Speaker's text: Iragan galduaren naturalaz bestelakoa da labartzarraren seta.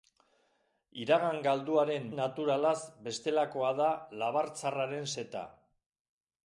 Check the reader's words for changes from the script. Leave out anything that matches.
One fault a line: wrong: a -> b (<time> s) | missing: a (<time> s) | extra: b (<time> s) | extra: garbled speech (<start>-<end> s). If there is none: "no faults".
no faults